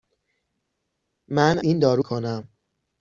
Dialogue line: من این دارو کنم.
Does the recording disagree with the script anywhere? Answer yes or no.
no